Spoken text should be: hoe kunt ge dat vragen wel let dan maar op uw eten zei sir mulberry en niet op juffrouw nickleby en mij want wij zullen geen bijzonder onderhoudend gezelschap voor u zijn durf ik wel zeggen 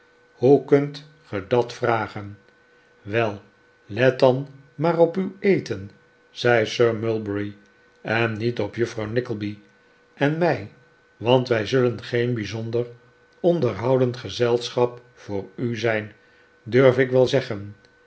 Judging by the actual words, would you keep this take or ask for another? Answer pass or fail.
pass